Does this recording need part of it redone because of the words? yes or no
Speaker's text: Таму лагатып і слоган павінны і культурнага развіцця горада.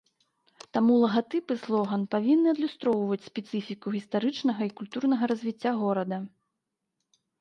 yes